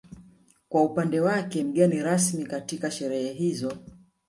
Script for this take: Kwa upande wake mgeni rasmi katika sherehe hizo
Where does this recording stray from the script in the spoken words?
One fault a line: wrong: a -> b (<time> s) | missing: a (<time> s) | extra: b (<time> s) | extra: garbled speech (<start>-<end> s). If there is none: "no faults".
no faults